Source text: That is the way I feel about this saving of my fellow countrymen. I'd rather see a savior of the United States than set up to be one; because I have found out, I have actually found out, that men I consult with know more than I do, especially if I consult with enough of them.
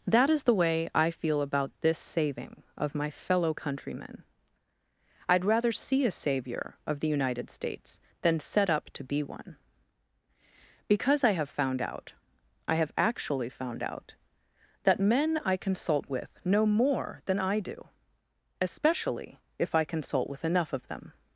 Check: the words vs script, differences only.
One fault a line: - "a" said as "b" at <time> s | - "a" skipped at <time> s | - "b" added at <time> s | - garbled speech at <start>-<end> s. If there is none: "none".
none